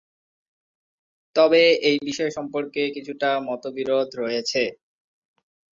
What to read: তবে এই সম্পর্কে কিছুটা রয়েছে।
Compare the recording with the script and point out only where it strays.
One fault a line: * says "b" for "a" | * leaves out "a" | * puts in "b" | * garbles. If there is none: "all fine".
* puts in "বিষয়"
* puts in "মতবিরোধ"